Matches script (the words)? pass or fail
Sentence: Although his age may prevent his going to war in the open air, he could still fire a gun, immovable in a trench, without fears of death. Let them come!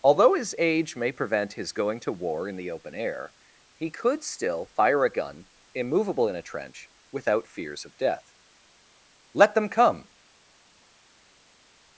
pass